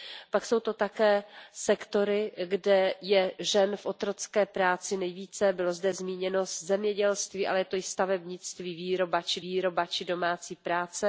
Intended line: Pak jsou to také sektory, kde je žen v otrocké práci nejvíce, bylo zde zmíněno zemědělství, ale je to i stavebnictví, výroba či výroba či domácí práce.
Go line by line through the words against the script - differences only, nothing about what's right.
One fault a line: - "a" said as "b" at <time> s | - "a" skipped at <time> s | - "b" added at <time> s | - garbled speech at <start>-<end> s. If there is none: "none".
none